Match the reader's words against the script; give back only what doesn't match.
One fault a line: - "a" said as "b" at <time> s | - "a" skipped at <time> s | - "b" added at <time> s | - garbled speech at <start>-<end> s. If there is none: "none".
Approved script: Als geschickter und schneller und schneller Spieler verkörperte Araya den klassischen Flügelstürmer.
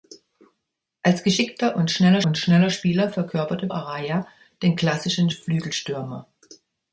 none